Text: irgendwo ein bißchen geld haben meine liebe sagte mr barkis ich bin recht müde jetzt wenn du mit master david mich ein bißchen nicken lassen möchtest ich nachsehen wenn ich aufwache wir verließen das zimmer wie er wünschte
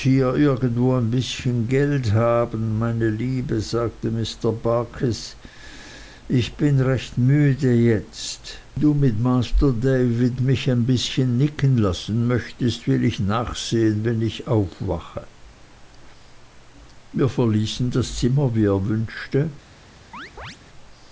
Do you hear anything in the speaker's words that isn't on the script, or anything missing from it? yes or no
yes